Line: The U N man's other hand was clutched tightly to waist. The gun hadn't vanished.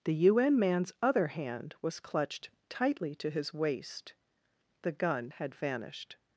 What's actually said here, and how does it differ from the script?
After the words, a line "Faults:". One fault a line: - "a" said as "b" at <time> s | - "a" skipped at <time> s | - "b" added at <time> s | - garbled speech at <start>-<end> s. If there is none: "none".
The U N man's other hand was clutched tightly to his waist. The gun had vanished.
Faults:
- "his" added at 3.3 s
- "hadn't" said as "had" at 5.3 s